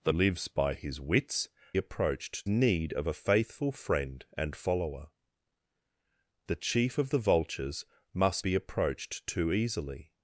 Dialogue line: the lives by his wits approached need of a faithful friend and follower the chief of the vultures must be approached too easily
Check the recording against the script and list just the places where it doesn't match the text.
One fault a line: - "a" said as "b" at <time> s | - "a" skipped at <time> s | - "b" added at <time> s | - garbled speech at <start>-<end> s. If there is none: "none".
none